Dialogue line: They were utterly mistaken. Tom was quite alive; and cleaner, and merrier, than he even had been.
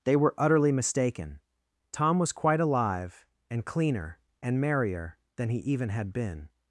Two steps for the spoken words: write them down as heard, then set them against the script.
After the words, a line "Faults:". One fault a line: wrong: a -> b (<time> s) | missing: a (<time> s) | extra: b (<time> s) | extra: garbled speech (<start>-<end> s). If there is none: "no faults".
They were utterly mistaken. Tom was quite alive; and cleaner, and merrier, than he even had been.
Faults:
no faults